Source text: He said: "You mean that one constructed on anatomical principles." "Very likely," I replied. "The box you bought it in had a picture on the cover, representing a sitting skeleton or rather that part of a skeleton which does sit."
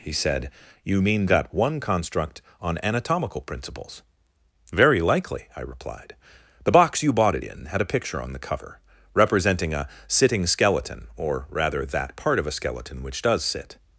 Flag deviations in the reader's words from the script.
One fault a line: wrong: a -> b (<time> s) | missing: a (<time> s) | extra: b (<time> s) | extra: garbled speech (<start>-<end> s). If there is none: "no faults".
wrong: constructed -> construct (1.8 s)